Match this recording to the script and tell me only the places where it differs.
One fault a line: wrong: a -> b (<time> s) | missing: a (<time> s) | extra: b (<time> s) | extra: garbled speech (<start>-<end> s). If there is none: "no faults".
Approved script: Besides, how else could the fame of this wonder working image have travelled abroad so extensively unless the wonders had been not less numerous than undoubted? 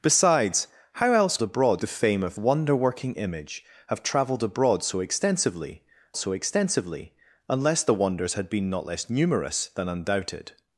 wrong: could -> abroad (1.4 s)
missing: this (2.4 s)
extra: so extensively (6.2 s)